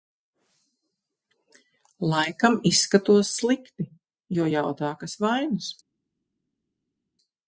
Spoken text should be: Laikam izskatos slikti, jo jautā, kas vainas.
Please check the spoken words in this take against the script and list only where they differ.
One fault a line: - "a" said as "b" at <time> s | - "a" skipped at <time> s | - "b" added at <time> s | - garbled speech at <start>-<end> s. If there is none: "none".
none